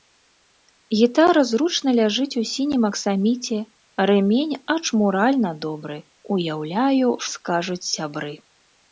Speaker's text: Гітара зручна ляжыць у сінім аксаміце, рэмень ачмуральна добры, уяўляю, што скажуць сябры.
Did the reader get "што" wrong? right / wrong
wrong